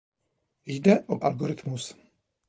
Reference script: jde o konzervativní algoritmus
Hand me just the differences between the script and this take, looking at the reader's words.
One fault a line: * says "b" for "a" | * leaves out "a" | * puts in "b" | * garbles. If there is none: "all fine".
* leaves out "konzervativní"